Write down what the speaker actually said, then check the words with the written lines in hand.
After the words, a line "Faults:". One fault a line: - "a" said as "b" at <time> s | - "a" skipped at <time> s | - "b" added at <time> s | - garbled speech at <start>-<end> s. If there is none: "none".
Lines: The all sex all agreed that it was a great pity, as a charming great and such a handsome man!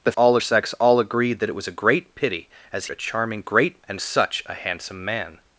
The all sex all agreed that it was a great pity, as a charming great and such a handsome man!
Faults:
none